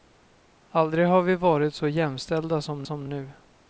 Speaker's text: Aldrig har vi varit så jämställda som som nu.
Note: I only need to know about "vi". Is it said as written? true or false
true